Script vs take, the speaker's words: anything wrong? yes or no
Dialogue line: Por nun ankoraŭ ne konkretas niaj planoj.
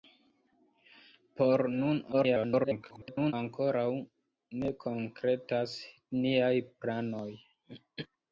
yes